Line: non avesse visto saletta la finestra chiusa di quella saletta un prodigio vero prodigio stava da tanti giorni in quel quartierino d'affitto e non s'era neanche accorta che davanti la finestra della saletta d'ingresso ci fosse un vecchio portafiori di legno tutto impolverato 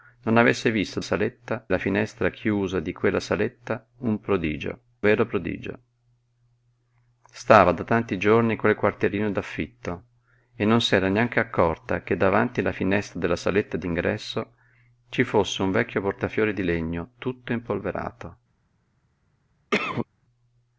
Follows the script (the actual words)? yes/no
yes